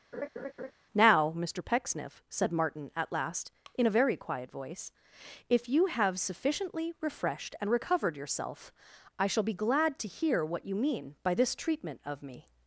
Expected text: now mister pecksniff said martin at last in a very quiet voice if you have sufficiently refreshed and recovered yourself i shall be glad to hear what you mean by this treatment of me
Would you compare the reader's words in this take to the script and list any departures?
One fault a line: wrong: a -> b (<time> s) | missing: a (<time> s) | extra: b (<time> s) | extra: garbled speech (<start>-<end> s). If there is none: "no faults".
no faults